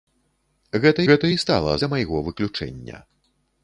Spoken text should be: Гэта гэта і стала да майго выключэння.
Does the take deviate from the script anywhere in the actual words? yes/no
no